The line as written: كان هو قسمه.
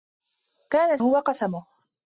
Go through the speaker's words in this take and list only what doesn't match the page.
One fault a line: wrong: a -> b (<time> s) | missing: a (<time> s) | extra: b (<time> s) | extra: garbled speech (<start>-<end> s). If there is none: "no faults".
no faults